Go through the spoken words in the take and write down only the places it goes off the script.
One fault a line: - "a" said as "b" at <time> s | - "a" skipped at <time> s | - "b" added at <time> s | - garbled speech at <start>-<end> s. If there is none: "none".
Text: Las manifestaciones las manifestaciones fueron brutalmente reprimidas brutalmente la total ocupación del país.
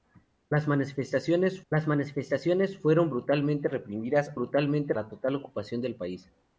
none